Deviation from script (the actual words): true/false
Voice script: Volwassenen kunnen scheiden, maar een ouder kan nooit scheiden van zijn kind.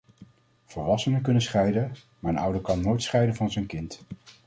false